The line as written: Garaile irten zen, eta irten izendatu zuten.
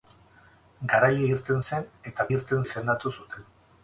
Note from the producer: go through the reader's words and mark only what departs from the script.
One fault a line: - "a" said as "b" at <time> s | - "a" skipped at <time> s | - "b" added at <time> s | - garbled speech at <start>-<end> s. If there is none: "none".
none